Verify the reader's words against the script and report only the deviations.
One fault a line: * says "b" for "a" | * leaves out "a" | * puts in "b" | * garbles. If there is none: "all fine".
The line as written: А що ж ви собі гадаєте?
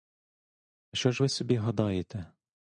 all fine